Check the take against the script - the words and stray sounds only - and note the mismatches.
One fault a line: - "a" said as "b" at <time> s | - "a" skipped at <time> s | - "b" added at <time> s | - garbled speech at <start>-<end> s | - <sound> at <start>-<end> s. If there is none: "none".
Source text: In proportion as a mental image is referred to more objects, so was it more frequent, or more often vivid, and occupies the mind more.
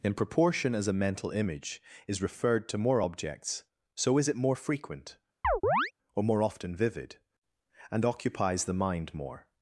- "was" said as "is" at 4.2 s
- chirp at 5.4-5.9 s